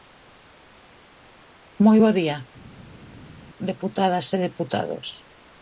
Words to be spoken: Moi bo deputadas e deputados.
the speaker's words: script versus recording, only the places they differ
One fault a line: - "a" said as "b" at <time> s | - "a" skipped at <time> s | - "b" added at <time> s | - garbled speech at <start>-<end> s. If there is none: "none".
- "día" added at 2.2 s